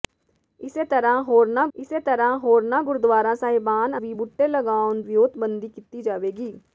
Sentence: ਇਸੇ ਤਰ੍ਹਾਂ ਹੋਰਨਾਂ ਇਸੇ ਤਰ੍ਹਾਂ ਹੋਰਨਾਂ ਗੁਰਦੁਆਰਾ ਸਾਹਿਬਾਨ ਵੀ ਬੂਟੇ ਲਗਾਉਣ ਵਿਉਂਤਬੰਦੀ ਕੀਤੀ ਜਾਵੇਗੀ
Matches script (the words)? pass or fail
pass